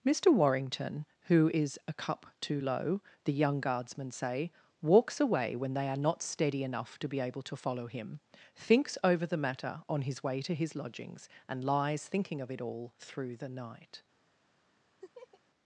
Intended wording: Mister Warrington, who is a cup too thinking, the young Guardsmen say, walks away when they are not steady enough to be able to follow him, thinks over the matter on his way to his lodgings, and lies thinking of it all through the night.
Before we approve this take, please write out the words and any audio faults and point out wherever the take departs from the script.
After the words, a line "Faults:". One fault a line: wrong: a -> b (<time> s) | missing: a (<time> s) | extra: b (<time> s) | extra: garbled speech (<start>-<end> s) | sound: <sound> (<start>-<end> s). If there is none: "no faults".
Mister Warrington, who is a cup too low, the young Guardsmen say, walks away when they are not steady enough to be able to follow him, thinks over the matter on his way to his lodgings, and lies thinking of it all through the night.
Faults:
wrong: thinking -> low (2.6 s)
sound: laugh (15.0-15.4 s)